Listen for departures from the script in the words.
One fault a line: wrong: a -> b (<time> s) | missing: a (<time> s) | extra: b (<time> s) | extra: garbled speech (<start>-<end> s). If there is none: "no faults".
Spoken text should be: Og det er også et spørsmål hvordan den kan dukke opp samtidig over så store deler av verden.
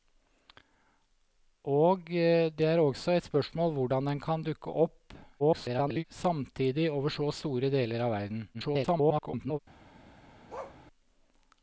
extra: garbled speech (5.4-6.0 s)
extra: garbled speech (8.5-9.6 s)